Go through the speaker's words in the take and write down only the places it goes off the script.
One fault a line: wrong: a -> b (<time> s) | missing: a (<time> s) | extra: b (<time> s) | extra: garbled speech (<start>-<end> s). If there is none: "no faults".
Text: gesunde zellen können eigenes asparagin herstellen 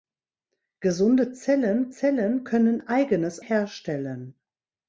extra: zellen (1.9 s)
missing: asparagin (3.4 s)